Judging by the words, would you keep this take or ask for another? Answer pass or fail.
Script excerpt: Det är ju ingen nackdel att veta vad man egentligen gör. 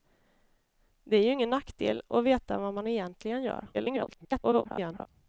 fail